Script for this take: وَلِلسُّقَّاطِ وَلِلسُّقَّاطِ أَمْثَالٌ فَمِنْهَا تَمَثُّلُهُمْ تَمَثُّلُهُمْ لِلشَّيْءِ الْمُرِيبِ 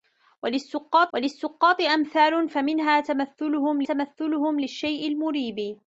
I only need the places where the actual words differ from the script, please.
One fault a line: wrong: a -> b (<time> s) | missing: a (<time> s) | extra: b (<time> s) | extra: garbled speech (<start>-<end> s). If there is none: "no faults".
no faults